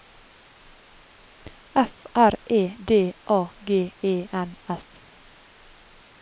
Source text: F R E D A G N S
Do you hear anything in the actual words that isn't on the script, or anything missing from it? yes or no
yes